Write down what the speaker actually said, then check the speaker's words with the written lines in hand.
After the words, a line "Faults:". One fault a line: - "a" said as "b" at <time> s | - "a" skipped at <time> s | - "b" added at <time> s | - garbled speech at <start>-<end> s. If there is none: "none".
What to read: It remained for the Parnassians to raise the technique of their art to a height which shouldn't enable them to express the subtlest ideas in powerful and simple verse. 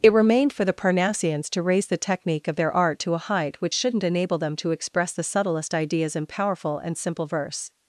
It remained for the Parnassians to raise the technique of their art to a height which shouldn't enable them to express the subtlest ideas in powerful and simple verse.
Faults:
none